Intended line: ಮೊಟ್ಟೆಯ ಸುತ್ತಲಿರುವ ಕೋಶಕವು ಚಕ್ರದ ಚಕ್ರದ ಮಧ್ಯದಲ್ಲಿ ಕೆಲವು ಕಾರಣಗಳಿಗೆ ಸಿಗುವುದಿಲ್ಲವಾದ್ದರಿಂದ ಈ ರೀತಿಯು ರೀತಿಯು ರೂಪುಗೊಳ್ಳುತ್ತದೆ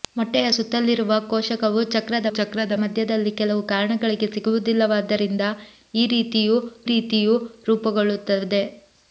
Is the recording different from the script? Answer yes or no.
no